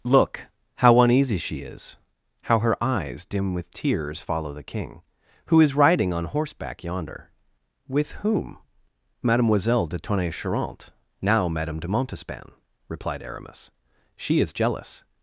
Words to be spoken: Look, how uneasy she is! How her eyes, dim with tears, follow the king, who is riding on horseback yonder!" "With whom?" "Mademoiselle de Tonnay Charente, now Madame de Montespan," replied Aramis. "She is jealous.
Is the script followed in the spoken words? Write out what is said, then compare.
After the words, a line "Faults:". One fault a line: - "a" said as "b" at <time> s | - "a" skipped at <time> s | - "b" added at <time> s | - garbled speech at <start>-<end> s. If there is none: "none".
Look, how uneasy she is! How her eyes, dim with tears, follow the king, who is riding on horseback yonder!" "With whom?" "Mademoiselle de Tonnay Charente, now Madame de Montespan," replied Aramis. "She is jealous.
Faults:
none